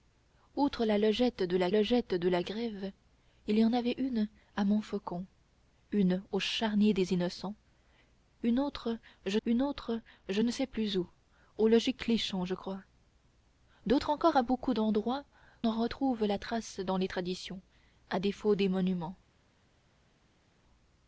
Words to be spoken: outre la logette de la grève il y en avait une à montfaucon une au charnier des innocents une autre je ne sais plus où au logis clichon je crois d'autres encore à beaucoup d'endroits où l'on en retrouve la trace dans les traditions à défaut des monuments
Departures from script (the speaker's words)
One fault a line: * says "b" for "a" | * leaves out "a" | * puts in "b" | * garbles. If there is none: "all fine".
* puts in "logette de la"
* puts in "une autre je"
* leaves out "où l'on"